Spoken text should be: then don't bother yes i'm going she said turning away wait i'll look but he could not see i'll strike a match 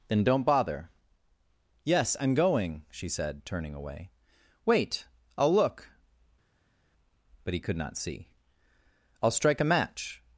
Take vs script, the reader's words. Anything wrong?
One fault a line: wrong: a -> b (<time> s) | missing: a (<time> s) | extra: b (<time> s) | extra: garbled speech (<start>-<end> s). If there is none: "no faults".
no faults